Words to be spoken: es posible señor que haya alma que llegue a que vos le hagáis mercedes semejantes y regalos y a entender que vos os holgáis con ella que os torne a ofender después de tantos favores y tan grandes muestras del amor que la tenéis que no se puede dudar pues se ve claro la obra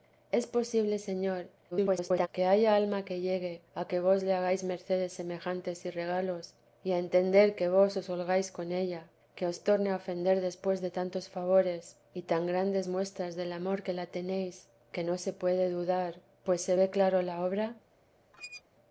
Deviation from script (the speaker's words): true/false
true